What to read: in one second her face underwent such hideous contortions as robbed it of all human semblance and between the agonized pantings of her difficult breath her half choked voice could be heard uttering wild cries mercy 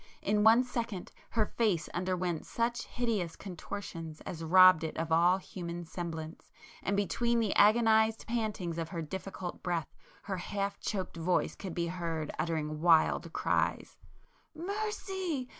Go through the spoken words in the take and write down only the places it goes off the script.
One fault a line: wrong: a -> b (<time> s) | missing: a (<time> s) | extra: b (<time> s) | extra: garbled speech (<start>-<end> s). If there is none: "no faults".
no faults